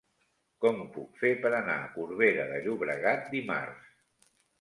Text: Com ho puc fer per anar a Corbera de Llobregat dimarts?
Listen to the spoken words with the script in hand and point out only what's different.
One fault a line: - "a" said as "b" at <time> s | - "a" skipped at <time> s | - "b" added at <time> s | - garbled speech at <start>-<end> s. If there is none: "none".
none